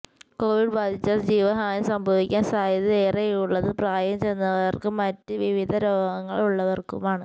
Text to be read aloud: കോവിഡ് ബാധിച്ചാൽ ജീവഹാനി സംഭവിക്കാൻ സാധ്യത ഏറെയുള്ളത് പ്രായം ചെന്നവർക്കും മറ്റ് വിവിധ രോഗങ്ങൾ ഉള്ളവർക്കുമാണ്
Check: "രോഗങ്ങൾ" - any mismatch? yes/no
no